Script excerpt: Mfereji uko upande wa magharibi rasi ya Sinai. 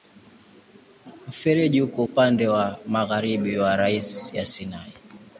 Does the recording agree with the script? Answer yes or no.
no